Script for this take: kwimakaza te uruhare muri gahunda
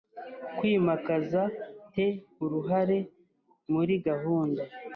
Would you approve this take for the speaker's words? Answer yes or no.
yes